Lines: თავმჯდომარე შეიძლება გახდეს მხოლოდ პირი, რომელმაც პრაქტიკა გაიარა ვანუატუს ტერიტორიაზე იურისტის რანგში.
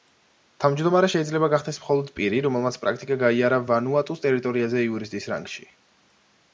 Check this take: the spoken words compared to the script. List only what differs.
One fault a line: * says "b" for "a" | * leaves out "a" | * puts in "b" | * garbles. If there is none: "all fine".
all fine